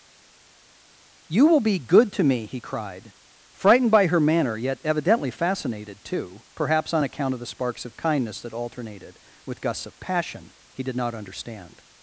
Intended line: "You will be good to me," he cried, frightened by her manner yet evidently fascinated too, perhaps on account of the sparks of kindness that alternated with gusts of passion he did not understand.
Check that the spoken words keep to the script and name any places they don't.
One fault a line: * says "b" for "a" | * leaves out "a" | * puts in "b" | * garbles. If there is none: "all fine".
all fine